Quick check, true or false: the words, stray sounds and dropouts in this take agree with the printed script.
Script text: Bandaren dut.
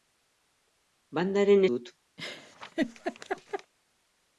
false